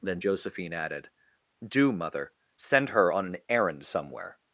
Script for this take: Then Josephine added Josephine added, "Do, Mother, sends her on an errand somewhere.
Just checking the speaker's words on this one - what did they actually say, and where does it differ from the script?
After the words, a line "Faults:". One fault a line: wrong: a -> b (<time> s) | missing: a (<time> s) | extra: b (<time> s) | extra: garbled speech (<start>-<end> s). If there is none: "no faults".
Then Josephine added, "Do, Mother, send her on an errand somewhere.
Faults:
missing: Josephine added (1.1 s)
wrong: sends -> send (2.6 s)